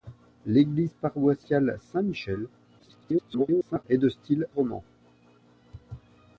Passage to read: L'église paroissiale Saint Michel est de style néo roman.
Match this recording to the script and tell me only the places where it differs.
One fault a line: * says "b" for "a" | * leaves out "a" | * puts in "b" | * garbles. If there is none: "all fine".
* garbles
* leaves out "néo"